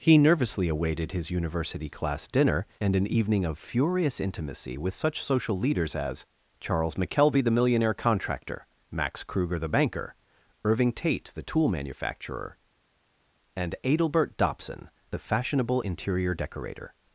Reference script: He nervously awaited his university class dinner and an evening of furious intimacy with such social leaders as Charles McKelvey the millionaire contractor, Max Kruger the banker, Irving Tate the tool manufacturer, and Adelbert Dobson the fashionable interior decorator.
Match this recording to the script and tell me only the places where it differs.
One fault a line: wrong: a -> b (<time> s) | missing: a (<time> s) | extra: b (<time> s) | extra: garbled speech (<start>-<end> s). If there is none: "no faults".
no faults